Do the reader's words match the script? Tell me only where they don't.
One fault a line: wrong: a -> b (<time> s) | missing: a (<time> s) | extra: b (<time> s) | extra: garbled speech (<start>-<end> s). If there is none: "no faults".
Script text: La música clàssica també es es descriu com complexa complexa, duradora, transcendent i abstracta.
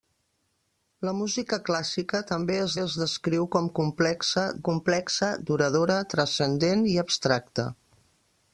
no faults